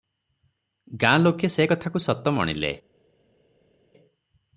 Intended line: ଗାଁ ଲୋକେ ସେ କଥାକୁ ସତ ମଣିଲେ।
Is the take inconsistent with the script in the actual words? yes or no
no